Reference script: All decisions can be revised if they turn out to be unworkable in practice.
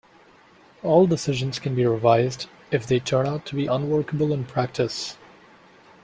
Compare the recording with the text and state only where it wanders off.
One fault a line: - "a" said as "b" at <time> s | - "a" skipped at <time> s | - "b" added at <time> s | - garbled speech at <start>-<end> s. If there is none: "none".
none